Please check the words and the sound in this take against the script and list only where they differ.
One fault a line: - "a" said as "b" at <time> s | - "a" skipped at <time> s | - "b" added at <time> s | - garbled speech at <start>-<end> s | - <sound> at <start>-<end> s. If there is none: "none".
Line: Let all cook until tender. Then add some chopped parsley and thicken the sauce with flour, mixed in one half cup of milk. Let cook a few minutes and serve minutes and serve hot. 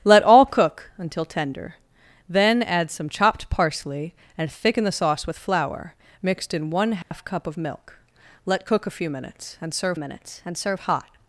- dropout at 7.0-7.1 s